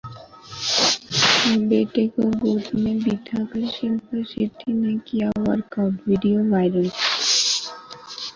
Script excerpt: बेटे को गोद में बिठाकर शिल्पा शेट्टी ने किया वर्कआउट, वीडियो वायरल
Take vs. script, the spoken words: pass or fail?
pass